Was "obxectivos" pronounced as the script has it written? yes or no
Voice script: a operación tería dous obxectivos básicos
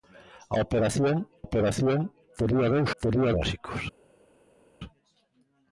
no